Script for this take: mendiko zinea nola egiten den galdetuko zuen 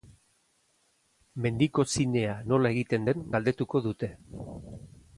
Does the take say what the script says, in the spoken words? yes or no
no